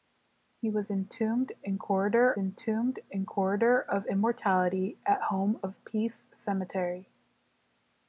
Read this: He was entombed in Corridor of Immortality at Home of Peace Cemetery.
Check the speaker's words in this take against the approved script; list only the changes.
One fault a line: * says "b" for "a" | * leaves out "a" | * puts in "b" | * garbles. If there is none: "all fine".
* puts in "entombed in Corridor"